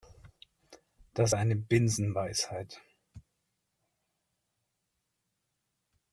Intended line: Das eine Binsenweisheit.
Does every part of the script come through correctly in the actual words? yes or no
yes